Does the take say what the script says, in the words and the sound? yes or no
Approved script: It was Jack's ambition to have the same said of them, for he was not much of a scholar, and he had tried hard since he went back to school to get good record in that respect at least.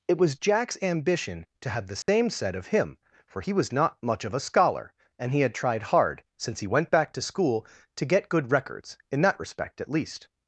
no